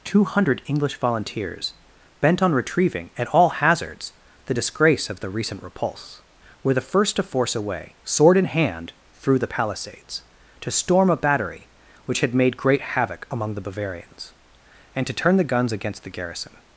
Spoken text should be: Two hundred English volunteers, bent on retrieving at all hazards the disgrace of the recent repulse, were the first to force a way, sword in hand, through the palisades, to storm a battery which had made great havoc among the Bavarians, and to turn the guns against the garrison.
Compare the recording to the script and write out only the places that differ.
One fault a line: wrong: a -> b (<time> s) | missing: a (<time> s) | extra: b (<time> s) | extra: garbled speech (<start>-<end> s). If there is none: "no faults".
no faults